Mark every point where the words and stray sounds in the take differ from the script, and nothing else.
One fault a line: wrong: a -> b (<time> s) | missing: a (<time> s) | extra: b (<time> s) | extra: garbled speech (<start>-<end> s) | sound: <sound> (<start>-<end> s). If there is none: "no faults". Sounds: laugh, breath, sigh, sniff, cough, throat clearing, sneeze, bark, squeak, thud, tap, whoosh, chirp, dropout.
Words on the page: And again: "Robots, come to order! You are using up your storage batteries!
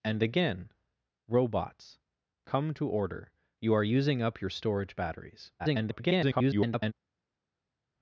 extra: garbled speech (5.6-6.9 s)